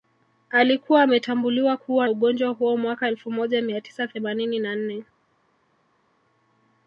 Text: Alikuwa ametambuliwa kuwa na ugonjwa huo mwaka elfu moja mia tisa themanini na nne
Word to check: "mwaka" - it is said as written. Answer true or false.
true